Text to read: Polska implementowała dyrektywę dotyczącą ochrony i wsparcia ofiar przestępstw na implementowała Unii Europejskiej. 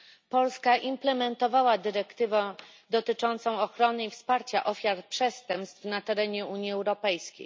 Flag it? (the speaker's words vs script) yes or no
yes